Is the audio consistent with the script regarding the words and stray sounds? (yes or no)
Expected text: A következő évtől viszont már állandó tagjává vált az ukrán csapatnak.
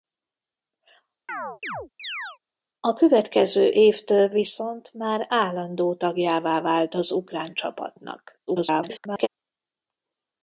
no